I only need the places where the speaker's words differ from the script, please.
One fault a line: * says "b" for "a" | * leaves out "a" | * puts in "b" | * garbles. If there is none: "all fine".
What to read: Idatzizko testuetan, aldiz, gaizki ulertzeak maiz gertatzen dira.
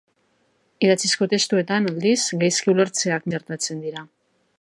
* leaves out "maiz"